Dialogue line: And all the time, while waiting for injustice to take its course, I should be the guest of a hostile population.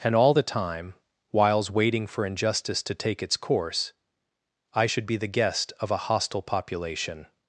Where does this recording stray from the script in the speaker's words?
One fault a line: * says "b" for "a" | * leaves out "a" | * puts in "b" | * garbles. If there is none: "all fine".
* says "whiles" for "while"